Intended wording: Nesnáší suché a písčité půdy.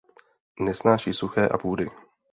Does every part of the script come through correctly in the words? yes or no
no